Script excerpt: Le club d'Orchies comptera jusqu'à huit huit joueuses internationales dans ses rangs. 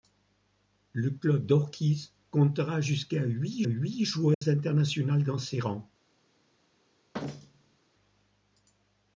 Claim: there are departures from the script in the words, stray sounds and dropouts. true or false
true